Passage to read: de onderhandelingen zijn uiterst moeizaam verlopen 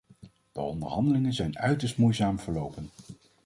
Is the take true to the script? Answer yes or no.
yes